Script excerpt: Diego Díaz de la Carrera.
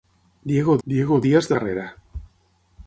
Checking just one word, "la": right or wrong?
wrong